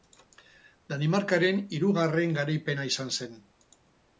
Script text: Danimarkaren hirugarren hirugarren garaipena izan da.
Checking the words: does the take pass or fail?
fail